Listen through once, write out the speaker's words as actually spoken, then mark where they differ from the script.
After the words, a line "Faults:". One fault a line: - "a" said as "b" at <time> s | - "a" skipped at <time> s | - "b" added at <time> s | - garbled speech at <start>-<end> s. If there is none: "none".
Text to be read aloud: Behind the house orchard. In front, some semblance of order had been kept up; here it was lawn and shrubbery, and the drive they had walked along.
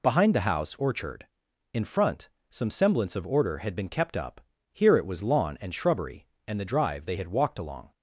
Behind the house orchard. In front, some semblance of order had been kept up; here it was lawn and shrubbery, and the drive they had walked along.
Faults:
none